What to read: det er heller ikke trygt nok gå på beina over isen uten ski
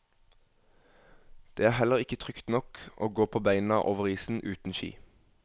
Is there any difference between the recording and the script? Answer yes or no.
yes